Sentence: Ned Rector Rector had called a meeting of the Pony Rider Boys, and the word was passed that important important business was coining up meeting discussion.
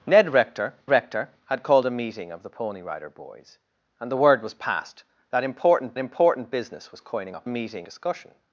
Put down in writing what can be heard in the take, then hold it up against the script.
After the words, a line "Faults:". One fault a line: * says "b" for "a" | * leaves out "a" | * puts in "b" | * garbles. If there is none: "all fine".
Ned Rector Rector had called a meeting of the Pony Rider Boys, and the word was passed that important important business was coining up meeting discussion.
Faults:
all fine